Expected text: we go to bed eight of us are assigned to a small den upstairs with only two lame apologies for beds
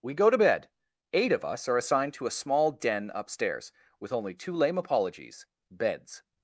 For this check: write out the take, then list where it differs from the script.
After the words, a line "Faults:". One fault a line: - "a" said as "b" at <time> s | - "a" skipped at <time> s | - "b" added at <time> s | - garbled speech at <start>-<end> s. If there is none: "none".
we go to bed eight of us are assigned to a small den upstairs with only two lame apologies beds
Faults:
- "for" skipped at 5.5 s